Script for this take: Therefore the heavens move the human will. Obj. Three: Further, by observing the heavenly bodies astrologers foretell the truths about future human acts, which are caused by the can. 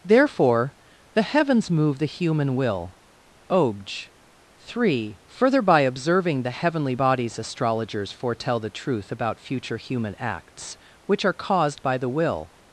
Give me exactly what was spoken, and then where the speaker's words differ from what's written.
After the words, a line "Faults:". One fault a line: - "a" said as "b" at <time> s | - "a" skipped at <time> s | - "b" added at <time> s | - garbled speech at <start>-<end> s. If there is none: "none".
Therefore the heavens move the human will. Obj. Three: Further, by observing the heavenly bodies astrologers foretell the truth about future human acts, which are caused by the will.
Faults:
- "truths" said as "truth" at 8.7 s
- "can" said as "will" at 12.1 s